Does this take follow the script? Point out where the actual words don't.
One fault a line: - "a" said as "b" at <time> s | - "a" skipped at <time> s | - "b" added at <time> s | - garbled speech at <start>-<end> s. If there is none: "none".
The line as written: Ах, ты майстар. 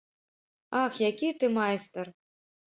- "які" added at 1.1 s